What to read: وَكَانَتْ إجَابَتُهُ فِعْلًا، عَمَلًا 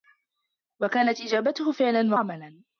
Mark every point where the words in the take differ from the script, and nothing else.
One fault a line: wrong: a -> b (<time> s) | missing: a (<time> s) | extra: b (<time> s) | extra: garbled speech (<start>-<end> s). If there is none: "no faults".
no faults